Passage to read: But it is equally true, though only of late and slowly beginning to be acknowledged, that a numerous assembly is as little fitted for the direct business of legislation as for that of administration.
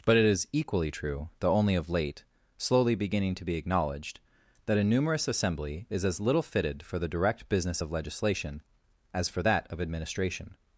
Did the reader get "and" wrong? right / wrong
wrong